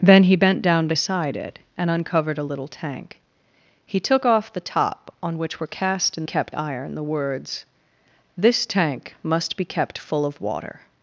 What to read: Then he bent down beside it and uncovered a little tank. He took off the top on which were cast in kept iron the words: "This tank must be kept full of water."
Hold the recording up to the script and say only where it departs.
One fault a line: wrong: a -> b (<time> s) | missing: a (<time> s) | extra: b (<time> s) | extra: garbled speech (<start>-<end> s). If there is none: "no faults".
no faults